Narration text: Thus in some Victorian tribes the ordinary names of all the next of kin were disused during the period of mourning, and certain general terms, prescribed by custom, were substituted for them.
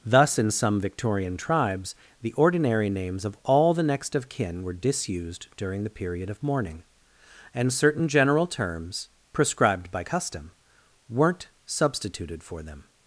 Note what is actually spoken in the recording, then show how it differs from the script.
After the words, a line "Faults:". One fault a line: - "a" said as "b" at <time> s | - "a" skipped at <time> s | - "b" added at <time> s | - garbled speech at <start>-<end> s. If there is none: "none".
Thus in some Victorian tribes the ordinary names of all the next of kin were disused during the period of mourning, and certain general terms, prescribed by custom, weren't substituted for them.
Faults:
- "were" said as "weren't" at 11.1 s